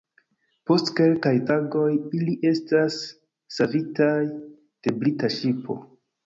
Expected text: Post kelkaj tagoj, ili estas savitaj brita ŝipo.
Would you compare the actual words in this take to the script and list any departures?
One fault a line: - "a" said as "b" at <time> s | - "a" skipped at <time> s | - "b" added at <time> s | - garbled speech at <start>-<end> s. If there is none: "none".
- "de" added at 4.3 s